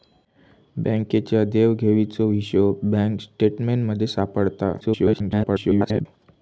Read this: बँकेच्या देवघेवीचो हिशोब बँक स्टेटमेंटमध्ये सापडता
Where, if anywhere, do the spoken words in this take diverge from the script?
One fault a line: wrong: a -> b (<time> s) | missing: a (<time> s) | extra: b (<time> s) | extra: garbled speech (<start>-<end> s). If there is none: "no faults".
extra: garbled speech (4.8-6.1 s)